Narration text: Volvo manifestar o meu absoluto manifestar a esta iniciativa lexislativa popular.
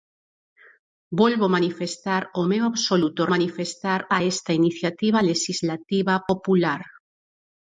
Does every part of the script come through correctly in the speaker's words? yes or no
yes